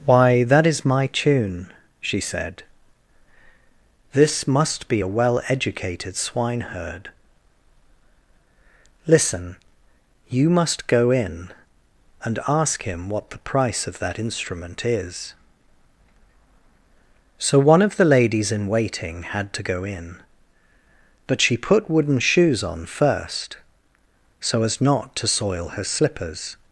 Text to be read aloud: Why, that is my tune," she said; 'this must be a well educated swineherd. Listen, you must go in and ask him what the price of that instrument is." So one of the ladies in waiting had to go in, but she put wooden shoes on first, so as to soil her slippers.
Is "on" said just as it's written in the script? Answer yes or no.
yes